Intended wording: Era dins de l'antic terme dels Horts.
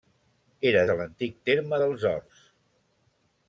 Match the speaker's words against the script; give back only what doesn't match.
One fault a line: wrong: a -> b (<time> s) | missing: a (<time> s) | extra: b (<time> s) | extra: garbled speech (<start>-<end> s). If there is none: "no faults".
missing: dins (0.8 s)